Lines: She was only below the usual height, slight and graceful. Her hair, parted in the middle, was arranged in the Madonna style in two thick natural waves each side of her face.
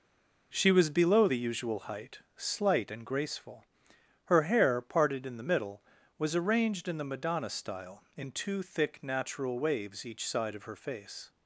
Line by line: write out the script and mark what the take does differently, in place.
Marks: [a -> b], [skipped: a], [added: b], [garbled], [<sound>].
She was [skipped: only] below the usual height, slight and graceful. Her hair, parted in the middle, was arranged in the Madonna style in two thick natural waves each side of her face.